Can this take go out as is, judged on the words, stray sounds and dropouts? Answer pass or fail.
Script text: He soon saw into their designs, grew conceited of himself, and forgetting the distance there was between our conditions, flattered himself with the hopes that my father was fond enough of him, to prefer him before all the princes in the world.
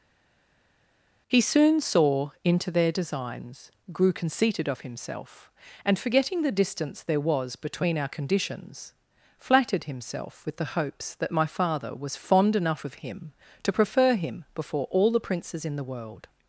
pass